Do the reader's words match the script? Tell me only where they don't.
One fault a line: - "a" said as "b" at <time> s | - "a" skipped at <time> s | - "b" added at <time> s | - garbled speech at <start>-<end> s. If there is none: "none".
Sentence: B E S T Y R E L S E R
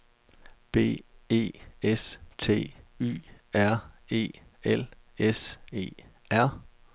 none